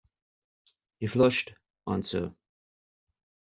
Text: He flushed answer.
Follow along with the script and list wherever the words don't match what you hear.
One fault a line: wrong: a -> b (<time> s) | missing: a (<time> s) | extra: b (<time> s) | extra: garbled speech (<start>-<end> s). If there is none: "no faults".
no faults